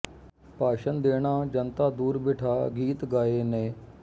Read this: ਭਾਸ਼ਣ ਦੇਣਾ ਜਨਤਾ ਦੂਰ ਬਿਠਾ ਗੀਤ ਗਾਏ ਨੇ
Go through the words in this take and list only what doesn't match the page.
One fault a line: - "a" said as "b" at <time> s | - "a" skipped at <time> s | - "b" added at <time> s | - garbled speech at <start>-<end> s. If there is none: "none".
none